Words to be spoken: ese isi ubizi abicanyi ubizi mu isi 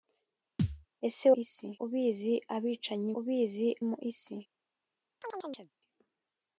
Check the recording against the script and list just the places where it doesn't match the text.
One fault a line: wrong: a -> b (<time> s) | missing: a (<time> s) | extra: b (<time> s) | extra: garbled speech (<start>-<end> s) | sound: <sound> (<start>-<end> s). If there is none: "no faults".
sound: thud (0.6-0.9 s)
sound: chirp (5.2-5.7 s)